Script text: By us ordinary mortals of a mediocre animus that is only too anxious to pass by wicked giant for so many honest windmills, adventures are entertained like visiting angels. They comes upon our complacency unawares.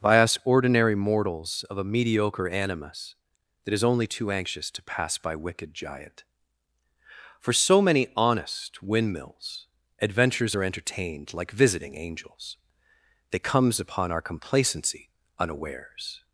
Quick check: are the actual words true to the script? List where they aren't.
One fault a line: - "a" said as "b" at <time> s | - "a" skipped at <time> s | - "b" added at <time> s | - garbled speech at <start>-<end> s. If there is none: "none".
none